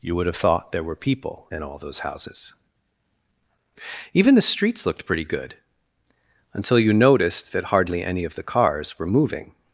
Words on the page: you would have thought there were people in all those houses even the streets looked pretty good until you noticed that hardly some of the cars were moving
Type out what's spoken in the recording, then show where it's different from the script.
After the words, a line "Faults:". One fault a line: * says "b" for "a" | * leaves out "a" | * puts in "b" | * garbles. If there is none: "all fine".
you would have thought there were people in all those houses even the streets looked pretty good until you noticed that hardly any of the cars were moving
Faults:
* says "any" for "some"